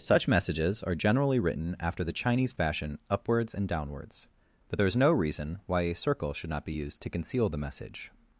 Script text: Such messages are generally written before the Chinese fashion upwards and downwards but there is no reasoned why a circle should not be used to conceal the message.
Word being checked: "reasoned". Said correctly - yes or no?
no